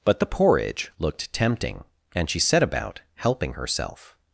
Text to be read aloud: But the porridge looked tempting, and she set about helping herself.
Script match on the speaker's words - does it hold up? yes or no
yes